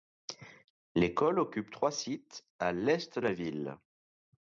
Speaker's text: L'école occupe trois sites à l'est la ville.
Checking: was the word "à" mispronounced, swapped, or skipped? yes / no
no